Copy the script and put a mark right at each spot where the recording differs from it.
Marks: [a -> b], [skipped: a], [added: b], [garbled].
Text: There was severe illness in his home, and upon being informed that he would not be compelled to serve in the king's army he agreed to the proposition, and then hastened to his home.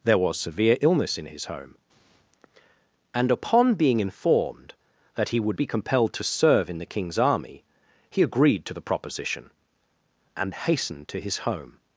There was severe illness in his home, and upon being informed that he would [skipped: not] be compelled to serve in the king's army he agreed to the proposition, and [skipped: then] hastened to his home.